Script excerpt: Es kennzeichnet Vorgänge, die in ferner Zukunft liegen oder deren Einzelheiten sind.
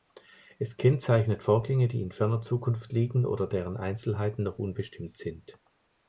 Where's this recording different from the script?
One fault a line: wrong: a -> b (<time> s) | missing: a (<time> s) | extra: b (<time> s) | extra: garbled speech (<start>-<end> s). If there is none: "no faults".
extra: noch unbestimmt (4.4 s)